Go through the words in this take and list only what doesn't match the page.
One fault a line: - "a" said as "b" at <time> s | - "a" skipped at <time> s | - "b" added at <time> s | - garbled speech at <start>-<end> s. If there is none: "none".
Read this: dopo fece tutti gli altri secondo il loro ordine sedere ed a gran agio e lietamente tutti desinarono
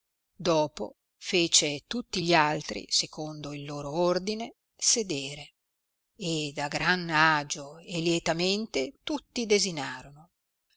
none